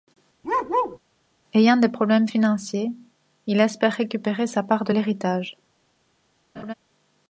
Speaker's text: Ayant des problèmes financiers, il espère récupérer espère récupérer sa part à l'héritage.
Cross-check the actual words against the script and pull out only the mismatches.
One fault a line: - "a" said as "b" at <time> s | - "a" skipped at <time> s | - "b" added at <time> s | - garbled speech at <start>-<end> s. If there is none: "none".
- "espère récupérer" skipped at 4.5 s
- "à" said as "de" at 4.8 s